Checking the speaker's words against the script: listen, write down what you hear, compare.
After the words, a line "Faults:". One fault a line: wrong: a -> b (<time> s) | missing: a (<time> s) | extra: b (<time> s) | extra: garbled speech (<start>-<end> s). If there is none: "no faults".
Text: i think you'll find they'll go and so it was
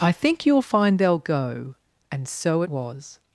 i think you'll find they'll go and so was
Faults:
missing: it (2.6 s)